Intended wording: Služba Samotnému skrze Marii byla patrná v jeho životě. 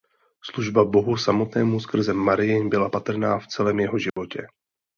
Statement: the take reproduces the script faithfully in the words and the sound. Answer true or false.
false